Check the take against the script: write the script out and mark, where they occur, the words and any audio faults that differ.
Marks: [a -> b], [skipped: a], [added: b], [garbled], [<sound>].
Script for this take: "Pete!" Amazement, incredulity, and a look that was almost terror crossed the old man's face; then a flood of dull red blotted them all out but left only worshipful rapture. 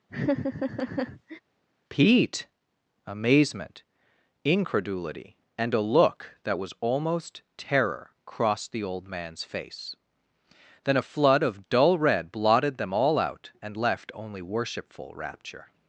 [laugh] "Pete!" Amazement, incredulity, and a look that was almost terror crossed the old man's face; then a flood of dull red blotted them all out [but -> and] left only worshipful rapture.